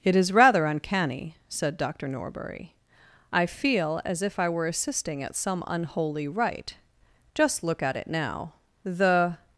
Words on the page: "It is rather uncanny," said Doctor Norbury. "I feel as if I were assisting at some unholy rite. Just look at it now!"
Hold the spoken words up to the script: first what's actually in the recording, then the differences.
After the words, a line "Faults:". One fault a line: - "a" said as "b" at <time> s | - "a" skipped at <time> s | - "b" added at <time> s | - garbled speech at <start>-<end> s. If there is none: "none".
"It is rather uncanny," said Doctor Norbury. "I feel as if I were assisting at some unholy rite. Just look at it now!" The
Faults:
- "The" added at 8.8 s